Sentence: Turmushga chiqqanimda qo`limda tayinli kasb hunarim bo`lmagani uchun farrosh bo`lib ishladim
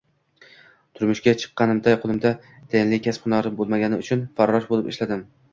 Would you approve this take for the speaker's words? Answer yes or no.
yes